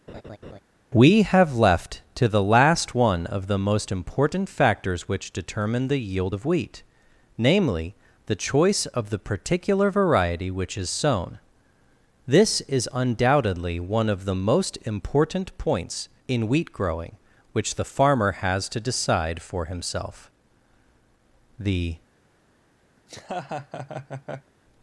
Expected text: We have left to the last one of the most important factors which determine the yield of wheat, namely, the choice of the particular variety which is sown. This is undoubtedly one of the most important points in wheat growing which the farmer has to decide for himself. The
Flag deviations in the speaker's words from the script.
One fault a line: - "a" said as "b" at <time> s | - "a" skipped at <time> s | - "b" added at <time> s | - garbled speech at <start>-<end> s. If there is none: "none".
none